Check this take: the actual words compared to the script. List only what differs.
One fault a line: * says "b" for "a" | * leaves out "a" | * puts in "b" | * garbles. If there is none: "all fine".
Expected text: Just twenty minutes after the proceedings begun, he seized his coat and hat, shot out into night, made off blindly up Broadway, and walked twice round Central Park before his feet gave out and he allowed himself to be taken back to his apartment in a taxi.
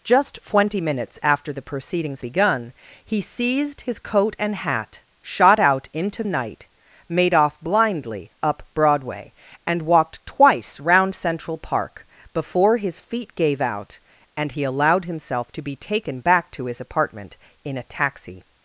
all fine